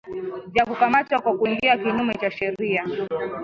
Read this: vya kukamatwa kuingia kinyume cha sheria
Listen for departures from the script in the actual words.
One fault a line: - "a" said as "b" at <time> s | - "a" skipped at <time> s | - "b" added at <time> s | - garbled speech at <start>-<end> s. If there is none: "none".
- "kwa" added at 1.2 s